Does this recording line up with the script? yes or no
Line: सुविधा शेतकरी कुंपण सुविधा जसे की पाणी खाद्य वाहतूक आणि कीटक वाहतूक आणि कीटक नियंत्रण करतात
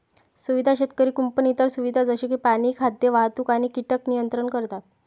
no